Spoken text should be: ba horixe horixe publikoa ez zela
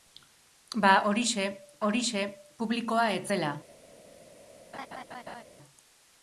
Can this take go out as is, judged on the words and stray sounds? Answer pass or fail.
fail